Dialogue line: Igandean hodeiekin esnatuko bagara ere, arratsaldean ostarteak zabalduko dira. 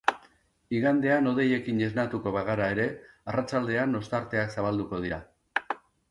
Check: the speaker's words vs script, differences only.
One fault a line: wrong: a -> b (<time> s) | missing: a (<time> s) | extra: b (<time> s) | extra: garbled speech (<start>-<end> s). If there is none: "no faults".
no faults